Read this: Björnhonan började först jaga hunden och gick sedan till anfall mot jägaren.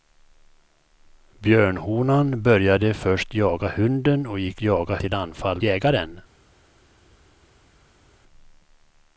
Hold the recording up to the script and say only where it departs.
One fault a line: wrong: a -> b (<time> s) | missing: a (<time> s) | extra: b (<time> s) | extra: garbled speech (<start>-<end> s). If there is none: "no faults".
wrong: sedan -> jaga (4.6 s)
missing: mot (5.6 s)